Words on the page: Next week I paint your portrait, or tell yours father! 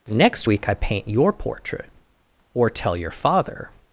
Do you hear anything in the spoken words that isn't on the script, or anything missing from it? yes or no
yes